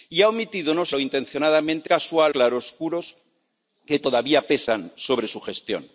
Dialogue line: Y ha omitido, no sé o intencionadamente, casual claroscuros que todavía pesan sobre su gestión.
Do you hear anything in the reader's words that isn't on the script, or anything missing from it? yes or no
no